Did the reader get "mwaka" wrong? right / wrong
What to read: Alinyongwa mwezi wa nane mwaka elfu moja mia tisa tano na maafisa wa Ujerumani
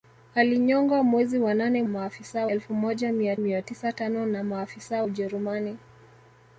wrong